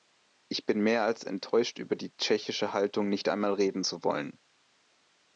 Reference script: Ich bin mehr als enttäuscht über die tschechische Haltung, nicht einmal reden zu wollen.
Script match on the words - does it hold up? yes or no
yes